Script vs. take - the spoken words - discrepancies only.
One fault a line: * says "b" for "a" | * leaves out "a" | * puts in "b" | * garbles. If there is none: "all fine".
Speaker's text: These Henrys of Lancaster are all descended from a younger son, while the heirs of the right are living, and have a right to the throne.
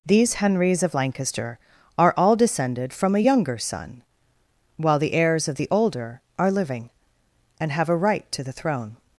* says "older" for "right"